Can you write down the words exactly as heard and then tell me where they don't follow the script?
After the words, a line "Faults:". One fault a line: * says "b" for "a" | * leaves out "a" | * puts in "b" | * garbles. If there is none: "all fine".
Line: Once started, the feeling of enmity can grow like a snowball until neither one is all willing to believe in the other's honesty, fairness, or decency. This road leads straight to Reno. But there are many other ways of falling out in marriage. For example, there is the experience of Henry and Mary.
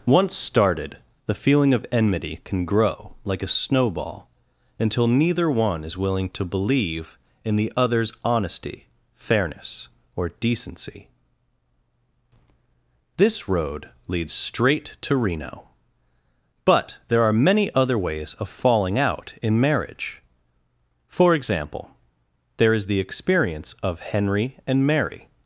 Once started, the feeling of enmity can grow like a snowball until neither one is willing to believe in the other's honesty, fairness, or decency. This road leads straight to Reno. But there are many other ways of falling out in marriage. For example, there is the experience of Henry and Mary.
Faults:
* leaves out "all"